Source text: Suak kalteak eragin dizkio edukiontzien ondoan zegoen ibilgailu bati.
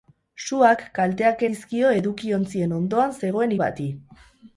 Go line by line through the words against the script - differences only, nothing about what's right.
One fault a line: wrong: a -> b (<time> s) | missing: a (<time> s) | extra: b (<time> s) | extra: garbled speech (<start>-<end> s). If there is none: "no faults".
missing: eragin (1.4 s)
missing: ibilgailu (3.5 s)